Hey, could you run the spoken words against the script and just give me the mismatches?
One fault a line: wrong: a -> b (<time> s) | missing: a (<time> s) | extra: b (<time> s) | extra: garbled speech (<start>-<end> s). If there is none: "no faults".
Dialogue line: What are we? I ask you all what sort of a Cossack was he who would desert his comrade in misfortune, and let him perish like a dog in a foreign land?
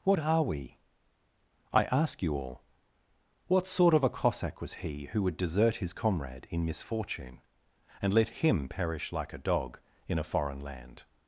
no faults